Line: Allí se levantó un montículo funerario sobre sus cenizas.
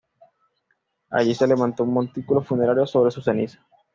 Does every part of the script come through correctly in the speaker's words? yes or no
yes